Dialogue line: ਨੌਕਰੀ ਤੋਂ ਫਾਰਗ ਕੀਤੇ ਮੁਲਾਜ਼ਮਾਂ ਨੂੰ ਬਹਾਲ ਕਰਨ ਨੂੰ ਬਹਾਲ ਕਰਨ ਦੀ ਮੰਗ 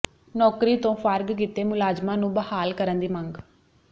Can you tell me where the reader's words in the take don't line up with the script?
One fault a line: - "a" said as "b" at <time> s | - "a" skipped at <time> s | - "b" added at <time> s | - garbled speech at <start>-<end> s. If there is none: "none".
- "ਨੂੰ ਬਹਾਲ ਕਰਨ" skipped at 3.0 s